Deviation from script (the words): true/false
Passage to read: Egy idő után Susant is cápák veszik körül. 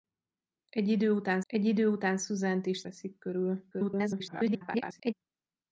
true